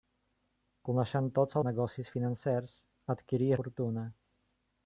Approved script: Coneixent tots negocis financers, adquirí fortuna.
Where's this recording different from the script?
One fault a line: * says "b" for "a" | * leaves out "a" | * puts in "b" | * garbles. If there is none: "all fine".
all fine